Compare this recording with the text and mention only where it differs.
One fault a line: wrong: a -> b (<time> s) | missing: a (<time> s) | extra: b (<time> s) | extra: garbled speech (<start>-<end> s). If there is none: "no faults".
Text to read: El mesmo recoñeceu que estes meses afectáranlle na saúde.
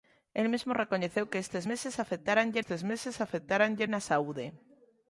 extra: estes meses afectáranlle (2.6 s)